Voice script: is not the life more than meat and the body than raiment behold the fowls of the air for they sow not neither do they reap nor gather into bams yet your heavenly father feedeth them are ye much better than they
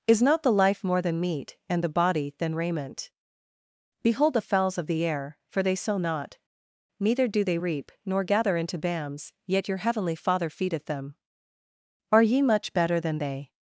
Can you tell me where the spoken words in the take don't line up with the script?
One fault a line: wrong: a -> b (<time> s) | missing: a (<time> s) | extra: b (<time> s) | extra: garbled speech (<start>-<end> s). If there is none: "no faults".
no faults